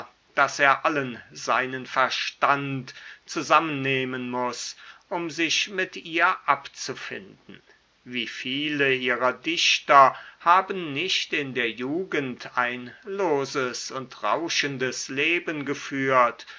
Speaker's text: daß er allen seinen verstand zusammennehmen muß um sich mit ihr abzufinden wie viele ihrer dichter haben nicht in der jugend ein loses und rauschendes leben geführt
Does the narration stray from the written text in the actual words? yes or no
no